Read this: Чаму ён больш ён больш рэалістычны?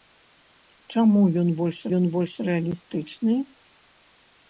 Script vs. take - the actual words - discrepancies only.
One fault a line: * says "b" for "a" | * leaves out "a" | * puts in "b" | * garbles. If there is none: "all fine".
all fine